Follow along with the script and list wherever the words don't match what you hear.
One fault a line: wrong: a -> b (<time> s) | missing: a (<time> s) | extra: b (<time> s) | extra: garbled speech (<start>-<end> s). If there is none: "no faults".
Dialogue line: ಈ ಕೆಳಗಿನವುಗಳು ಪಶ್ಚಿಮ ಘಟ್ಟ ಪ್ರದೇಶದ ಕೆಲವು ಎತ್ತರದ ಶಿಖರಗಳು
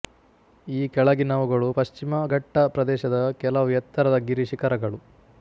extra: ಗಿರಿ (4.3 s)